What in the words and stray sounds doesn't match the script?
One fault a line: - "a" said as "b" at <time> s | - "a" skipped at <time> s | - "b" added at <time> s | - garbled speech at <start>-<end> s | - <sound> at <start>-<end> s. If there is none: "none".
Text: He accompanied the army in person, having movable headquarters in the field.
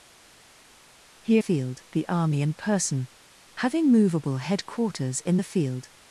- "accompanied" said as "field" at 1.4 s